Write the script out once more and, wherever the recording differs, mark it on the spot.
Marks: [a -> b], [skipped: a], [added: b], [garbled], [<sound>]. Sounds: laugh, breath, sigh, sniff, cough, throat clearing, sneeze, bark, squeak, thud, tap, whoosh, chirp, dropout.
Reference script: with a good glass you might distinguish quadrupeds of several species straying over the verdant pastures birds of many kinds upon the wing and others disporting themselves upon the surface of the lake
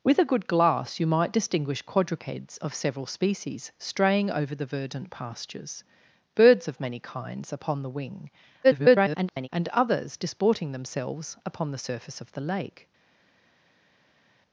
with a good glass you might distinguish quadrupeds of several species straying over the verdant pastures birds of many kinds upon the wing [garbled] and others disporting themselves upon the surface of the lake